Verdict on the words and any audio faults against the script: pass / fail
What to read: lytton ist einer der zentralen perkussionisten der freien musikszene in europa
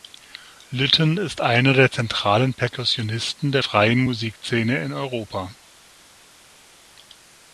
pass